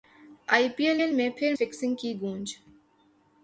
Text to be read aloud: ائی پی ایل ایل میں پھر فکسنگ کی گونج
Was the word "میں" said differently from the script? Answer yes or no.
no